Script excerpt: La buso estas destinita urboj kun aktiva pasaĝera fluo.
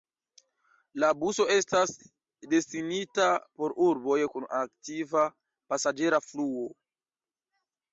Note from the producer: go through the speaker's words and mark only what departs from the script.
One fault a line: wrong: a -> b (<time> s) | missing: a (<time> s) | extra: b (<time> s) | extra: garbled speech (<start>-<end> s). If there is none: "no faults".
extra: por (3.6 s)